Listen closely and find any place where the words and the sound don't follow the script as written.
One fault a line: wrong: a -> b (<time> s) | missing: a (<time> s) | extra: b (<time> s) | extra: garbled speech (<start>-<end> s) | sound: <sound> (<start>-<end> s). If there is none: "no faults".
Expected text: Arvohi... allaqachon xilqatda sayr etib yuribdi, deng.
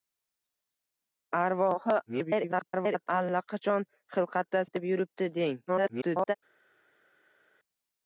extra: garbled speech (2.1-3.1 s)
missing: sayr (4.6 s)
extra: garbled speech (5.7-6.3 s)